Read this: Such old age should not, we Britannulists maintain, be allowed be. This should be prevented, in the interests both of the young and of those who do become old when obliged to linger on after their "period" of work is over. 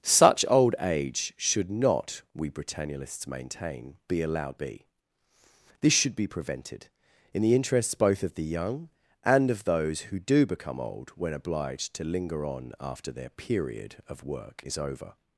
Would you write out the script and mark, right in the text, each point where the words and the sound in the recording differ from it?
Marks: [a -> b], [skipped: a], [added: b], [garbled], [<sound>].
Such old age should not, we Britannulists maintain, be allowed be. This should be prevented, in the interests both of the young and of those who do become old when obliged to linger on after their "period" of work is over.